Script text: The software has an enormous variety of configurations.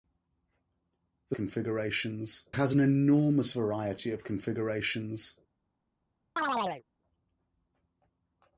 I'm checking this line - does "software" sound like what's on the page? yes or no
no